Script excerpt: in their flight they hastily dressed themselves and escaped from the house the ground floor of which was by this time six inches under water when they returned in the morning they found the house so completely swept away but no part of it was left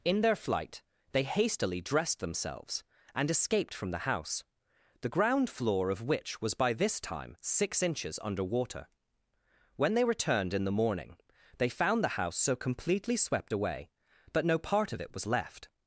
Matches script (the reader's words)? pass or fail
pass